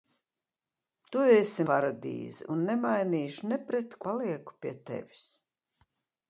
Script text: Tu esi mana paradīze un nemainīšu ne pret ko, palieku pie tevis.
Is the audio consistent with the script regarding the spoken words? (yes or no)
no